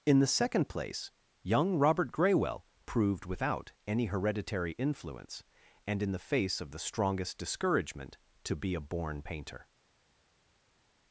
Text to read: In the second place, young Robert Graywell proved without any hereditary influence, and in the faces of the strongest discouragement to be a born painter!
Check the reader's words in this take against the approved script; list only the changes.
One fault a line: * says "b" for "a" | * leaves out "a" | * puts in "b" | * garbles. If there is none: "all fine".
* says "face" for "faces"